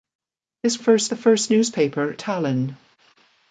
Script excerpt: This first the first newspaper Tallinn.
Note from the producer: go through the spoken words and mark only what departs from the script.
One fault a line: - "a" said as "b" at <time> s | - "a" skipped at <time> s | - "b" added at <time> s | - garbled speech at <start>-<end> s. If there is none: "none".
none